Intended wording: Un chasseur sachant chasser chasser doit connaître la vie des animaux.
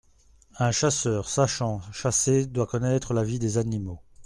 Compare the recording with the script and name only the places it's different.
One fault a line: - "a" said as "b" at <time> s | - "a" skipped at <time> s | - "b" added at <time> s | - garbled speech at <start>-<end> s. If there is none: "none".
- "chasser" skipped at 2.5 s